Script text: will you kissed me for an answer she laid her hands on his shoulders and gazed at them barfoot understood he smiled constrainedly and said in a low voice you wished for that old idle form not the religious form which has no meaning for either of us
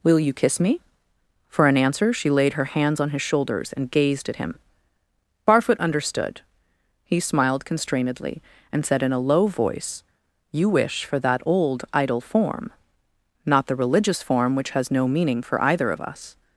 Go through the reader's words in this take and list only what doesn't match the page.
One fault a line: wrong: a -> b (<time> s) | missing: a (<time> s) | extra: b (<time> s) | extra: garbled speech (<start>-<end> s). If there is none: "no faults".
wrong: kissed -> kiss (0.3 s)
wrong: them -> him (4.4 s)
wrong: wished -> wish (10.7 s)